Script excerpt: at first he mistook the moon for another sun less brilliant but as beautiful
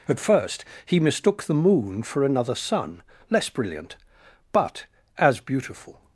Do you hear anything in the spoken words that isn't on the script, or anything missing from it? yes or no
no